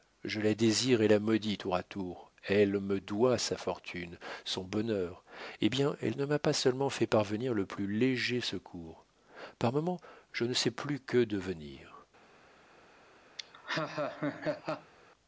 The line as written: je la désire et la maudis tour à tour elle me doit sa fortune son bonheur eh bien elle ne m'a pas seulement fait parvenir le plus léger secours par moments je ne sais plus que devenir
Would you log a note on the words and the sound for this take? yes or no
yes